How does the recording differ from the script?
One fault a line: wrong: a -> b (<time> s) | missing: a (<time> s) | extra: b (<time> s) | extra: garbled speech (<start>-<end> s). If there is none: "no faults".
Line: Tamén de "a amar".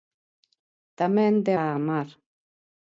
no faults